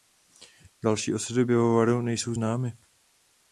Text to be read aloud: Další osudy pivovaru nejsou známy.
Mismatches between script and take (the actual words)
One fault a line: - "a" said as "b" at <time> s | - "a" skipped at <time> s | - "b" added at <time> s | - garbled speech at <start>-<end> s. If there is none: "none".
none